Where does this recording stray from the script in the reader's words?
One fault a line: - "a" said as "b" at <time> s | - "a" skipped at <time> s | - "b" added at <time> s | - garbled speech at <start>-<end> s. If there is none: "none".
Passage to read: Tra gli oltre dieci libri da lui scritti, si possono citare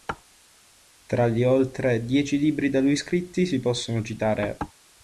none